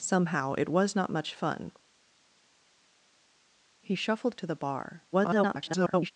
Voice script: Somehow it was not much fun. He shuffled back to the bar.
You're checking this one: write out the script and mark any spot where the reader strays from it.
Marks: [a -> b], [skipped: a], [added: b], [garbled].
Somehow it was not much fun. He shuffled [skipped: back] to the bar. [garbled]